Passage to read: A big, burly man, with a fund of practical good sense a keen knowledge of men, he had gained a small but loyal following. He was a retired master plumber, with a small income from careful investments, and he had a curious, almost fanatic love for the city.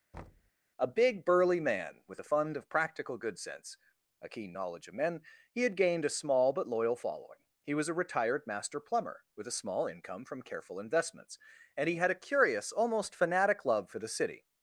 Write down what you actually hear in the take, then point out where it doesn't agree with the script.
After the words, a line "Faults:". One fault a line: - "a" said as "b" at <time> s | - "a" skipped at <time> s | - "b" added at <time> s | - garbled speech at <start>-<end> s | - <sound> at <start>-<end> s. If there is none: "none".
A big, burly man, with a fund of practical good sense a keen knowledge of men, he had gained a small but loyal following. He was a retired master plumber, with a small income from careful investments, and he had a curious, almost fanatic love for the city.
Faults:
- thud at 0.1-0.5 s